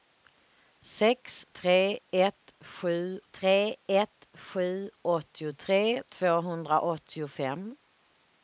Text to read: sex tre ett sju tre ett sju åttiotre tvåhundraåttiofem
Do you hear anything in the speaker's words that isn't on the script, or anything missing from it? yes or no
no